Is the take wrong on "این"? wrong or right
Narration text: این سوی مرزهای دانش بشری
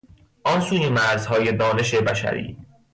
wrong